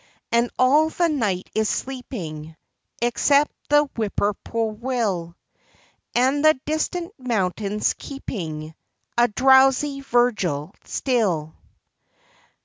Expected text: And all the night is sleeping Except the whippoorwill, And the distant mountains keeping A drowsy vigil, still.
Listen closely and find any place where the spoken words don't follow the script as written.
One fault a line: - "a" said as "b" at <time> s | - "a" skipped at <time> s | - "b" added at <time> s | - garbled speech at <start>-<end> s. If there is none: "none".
none